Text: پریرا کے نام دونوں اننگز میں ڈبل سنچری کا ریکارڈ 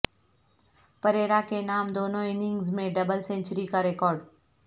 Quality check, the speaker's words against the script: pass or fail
pass